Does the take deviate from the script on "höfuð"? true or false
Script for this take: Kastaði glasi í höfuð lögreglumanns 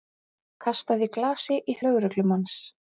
true